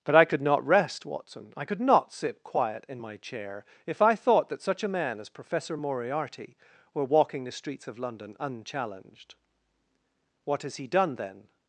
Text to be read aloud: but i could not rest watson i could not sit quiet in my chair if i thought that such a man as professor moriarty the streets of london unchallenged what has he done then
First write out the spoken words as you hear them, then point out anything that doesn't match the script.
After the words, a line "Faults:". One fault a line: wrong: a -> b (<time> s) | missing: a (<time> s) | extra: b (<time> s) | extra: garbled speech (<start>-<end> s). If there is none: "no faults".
but i could not rest watson i could not sit quiet in my chair if i thought that such a man as professor moriarty were walking the streets of london unchallenged what has he done then
Faults:
extra: were walking (6.9 s)